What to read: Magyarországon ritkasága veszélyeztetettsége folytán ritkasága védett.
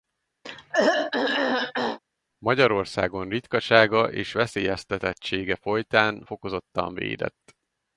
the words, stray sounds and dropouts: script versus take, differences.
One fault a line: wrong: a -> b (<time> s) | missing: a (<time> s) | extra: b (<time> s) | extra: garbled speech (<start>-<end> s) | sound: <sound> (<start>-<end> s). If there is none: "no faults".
sound: throat clearing (0.4-2.0 s)
extra: és (4.1 s)
wrong: ritkasága -> fokozottan (6.2 s)